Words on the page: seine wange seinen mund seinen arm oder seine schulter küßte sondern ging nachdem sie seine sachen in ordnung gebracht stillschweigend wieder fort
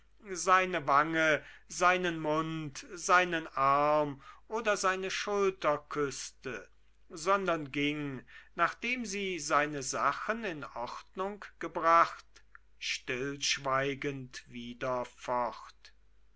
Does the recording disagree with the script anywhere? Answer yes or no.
no